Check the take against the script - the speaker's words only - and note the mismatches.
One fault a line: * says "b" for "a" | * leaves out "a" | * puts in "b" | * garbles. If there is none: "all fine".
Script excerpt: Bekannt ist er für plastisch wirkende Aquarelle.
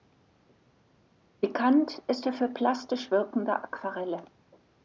all fine